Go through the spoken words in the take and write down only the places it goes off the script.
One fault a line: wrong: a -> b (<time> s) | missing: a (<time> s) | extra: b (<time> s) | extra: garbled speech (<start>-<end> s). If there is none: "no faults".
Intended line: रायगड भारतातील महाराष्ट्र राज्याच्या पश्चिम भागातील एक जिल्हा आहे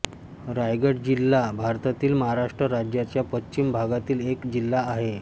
extra: जिल्हा (1.0 s)